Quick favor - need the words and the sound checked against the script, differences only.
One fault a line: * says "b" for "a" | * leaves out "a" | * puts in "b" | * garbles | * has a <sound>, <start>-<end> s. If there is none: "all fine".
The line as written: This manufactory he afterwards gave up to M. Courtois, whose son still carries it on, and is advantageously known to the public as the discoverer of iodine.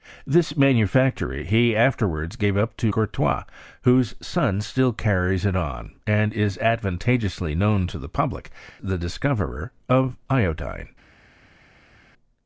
* leaves out "M"
* leaves out "as"